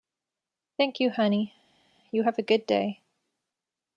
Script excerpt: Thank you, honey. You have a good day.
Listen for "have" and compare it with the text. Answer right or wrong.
right